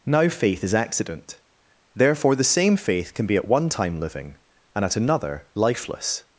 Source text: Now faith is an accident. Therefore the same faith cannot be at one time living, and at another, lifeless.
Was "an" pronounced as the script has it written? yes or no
no